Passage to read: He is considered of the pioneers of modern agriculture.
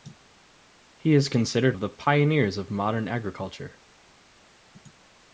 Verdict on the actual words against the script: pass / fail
pass